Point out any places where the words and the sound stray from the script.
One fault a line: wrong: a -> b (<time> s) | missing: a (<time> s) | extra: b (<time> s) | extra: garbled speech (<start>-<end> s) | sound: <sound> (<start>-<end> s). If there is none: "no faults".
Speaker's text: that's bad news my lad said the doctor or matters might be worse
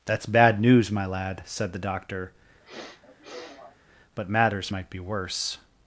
sound: sniff (2.6-3.8 s)
wrong: or -> but (4.2 s)